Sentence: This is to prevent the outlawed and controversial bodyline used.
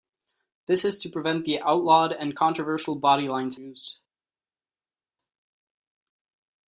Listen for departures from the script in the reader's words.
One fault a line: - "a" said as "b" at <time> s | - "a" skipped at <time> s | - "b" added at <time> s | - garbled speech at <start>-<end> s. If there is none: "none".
none